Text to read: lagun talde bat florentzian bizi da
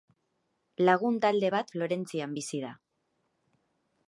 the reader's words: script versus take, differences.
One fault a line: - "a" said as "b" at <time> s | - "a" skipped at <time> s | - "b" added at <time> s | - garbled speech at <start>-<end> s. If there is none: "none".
none